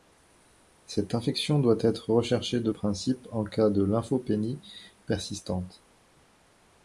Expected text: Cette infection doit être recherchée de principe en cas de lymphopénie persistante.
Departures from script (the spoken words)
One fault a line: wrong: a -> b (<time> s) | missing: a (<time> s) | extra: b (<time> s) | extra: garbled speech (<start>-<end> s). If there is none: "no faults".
no faults